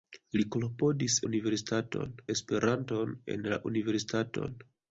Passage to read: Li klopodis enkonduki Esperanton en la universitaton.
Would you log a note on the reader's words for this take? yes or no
yes